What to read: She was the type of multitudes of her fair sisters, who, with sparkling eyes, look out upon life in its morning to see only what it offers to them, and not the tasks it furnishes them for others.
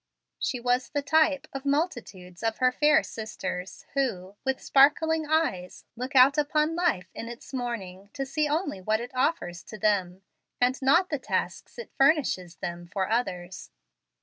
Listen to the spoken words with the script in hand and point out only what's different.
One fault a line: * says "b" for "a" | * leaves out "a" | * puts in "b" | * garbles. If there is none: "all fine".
all fine